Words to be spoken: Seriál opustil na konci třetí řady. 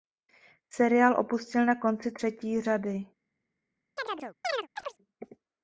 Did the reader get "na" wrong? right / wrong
right